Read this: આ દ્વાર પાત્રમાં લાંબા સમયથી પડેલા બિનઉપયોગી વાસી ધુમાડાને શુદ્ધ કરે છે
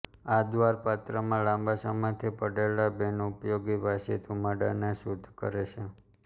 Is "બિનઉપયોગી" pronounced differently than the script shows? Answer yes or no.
no